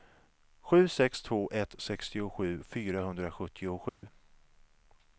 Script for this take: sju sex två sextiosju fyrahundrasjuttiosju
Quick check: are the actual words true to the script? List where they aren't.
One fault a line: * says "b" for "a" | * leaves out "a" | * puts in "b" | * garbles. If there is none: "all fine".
* puts in "ett"